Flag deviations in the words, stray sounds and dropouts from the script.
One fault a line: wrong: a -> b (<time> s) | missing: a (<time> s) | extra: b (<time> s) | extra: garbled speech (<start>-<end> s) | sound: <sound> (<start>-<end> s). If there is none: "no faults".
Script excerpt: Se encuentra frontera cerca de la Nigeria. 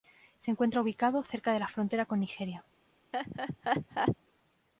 wrong: frontera -> ubicado (0.8 s)
extra: frontera con (1.7 s)
sound: laugh (3.1-4.2 s)